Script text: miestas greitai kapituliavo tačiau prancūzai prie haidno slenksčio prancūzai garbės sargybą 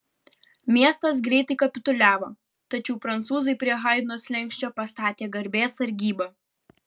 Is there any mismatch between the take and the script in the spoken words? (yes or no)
yes